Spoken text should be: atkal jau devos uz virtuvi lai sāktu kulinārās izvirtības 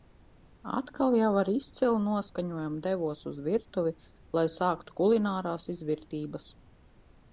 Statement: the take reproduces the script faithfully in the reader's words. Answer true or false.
false